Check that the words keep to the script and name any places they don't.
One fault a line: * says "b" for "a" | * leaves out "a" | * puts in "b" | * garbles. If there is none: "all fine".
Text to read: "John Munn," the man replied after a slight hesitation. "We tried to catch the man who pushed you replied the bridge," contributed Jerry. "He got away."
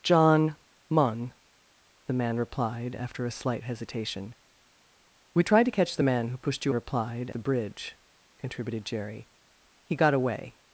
all fine